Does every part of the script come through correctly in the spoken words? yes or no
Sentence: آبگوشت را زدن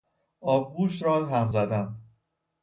no